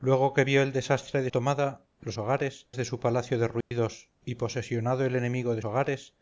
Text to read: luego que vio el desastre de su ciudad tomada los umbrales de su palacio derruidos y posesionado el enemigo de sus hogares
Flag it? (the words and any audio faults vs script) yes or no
yes